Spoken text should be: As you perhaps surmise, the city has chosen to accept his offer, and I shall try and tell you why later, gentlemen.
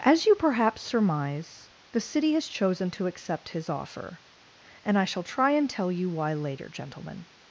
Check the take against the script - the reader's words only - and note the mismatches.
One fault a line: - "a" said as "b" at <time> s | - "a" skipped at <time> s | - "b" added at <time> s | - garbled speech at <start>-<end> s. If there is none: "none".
none